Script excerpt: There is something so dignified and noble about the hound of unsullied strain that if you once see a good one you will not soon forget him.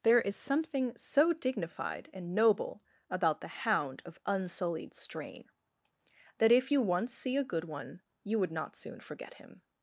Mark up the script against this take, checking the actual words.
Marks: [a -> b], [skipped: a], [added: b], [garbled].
There is something so dignified and noble about the hound of unsullied strain that if you once see a good one you [will -> would] not soon forget him.